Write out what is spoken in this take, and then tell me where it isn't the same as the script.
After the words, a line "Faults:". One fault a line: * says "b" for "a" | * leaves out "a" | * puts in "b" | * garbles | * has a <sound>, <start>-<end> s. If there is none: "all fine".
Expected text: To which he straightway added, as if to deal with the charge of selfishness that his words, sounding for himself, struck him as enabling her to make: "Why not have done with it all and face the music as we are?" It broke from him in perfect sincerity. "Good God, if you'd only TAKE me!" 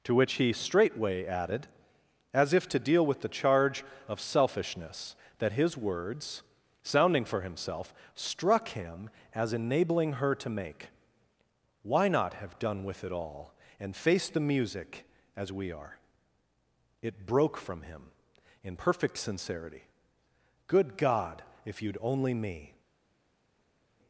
To which he straightway added, as if to deal with the charge of selfishness that his words, sounding for himself, struck him as enabling her to make: "Why not have done with it all and face the music as we are?" It broke from him in perfect sincerity. "Good God, if you'd only me!"
Faults:
* leaves out "TAKE"